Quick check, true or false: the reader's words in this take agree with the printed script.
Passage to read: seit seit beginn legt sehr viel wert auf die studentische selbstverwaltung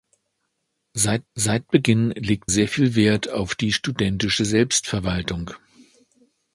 true